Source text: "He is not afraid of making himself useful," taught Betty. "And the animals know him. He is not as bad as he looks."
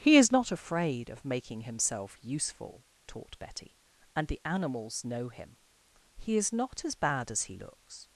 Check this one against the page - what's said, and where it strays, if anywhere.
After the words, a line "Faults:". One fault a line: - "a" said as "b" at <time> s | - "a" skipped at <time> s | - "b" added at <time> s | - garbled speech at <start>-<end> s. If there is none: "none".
"He is not afraid of making himself useful," taught Betty. "And the animals know him. He is not as bad as he looks."
Faults:
none